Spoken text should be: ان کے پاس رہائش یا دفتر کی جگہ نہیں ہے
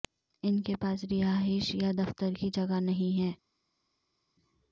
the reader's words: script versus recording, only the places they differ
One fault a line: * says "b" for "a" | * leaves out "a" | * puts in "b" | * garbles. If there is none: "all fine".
all fine